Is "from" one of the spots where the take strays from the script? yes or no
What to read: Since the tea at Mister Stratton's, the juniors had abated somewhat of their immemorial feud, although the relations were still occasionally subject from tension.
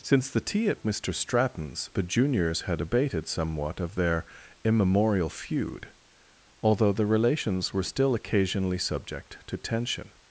yes